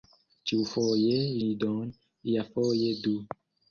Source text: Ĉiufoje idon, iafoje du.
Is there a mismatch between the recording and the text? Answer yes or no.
no